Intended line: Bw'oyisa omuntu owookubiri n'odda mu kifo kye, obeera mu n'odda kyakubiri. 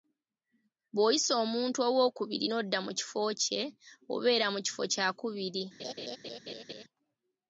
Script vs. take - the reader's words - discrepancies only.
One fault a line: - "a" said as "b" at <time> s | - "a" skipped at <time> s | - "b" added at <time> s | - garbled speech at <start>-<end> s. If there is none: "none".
- "n'odda" said as "kifo" at 4.7 s